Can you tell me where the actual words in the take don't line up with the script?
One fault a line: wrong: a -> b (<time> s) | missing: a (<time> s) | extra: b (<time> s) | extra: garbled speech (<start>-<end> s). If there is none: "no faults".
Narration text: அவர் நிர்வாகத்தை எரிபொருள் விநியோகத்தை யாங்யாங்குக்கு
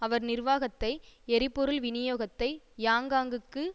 no faults